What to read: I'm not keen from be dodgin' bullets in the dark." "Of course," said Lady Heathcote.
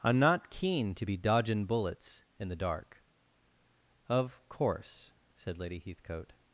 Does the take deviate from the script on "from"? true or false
true